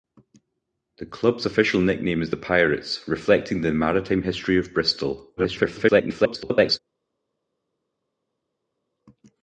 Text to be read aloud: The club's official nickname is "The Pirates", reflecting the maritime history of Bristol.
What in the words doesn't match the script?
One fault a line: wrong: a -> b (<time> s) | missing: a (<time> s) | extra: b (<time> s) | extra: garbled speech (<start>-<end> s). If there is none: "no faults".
extra: garbled speech (5.4-6.8 s)